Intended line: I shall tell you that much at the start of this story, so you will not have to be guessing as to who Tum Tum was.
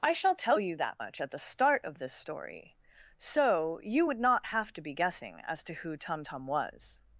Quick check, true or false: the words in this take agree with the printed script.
false